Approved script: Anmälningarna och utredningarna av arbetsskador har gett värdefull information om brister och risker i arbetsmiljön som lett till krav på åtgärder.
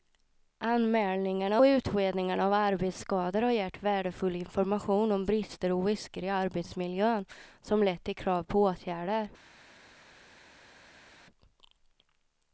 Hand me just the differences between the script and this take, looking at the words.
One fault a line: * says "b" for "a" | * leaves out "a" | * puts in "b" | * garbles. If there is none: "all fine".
* leaves out "och"